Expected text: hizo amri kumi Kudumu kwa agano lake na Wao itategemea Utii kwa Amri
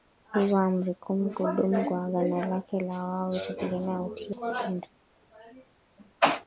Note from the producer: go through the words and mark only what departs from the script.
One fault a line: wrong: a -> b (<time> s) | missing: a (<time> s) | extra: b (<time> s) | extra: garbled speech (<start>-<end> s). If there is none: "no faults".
no faults